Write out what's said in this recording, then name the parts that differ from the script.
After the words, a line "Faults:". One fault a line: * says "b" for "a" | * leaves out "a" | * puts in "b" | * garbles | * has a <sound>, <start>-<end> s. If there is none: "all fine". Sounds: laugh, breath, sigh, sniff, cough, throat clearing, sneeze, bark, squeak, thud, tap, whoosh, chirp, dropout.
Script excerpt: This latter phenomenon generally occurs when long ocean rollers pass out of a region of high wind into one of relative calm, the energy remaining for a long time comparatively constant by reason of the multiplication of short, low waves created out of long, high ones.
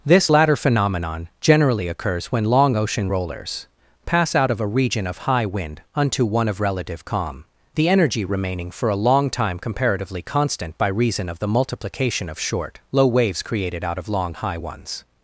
This latter phenomenon generally occurs when long ocean rollers pass out of a region of high wind unto one of relative calm, the energy remaining for a long time comparatively constant by reason of the multiplication of short, low waves created out of long, high ones.
Faults:
* says "unto" for "into"